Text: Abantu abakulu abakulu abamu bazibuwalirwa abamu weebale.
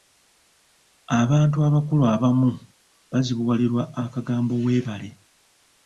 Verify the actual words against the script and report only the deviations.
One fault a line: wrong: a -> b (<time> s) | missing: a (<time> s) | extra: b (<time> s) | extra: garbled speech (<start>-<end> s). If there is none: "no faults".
missing: abakulu (2.0 s)
wrong: abamu -> akagambo (4.0 s)